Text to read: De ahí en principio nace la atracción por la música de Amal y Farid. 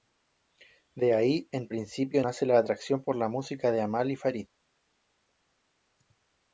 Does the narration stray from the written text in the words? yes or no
no